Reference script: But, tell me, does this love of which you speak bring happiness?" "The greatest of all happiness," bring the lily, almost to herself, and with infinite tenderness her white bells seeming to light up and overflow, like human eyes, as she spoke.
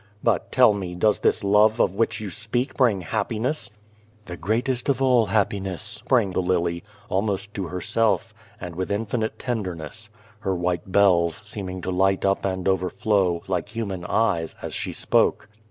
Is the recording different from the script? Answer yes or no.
no